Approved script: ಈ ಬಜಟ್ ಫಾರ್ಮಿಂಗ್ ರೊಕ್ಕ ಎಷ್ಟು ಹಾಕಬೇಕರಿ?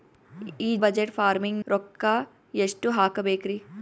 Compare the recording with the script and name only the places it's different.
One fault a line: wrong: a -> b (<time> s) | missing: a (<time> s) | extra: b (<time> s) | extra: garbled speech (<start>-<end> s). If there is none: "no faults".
no faults